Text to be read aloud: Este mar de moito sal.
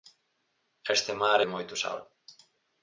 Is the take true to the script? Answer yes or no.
yes